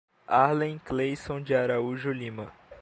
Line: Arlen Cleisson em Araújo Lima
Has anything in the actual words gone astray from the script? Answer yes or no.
yes